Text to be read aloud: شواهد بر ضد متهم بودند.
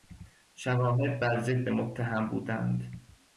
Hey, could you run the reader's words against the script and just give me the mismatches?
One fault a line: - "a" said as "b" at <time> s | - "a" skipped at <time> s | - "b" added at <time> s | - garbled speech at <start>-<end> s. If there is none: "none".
none